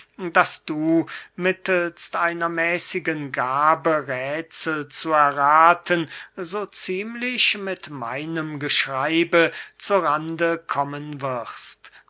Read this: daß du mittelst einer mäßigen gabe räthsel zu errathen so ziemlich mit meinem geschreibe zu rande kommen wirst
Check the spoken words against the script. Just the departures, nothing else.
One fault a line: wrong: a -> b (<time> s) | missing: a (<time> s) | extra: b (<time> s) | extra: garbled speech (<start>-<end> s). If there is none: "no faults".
no faults